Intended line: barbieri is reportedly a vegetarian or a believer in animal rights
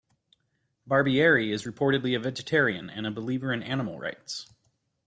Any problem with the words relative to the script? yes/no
yes